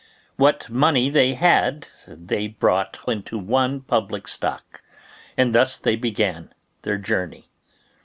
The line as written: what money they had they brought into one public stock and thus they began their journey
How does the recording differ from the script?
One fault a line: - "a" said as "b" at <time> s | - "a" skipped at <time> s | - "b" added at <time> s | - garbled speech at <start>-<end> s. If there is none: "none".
none